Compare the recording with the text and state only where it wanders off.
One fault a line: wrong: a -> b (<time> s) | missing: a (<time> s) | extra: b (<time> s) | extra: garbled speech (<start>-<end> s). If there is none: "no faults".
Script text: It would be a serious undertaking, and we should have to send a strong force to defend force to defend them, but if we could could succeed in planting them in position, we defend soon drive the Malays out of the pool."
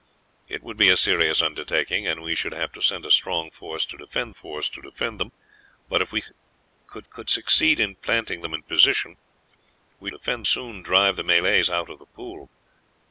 no faults